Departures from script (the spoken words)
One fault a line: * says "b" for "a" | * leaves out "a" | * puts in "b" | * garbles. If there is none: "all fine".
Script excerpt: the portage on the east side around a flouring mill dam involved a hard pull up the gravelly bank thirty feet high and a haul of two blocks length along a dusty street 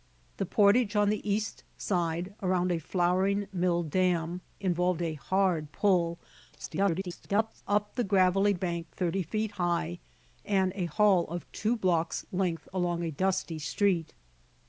* garbles